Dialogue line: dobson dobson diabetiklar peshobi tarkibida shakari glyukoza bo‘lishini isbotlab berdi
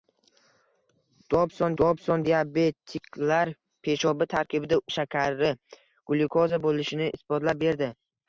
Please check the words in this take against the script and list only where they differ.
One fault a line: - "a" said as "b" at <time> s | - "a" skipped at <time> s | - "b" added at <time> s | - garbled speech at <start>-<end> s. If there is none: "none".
none